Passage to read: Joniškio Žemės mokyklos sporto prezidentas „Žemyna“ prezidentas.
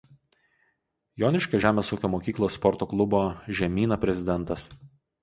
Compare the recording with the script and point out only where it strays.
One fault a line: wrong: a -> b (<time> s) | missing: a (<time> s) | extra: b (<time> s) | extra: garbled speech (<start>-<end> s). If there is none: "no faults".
extra: ūkio (2.0 s)
wrong: prezidentas -> klubo (2.9 s)